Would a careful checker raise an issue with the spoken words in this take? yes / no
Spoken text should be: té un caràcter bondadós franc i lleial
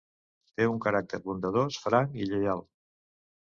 no